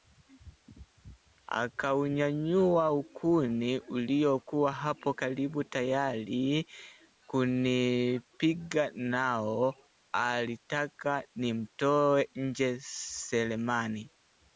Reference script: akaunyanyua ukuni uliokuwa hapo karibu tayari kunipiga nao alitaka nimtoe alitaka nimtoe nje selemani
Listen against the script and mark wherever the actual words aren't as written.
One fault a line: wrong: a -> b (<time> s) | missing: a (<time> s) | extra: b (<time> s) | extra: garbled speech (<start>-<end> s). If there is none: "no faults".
missing: alitaka nimtoe (12.3 s)